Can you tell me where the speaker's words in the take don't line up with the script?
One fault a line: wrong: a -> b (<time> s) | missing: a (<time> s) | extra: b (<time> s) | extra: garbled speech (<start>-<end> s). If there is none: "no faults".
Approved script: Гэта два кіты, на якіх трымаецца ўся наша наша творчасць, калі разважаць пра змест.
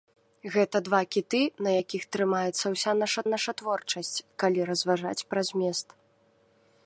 no faults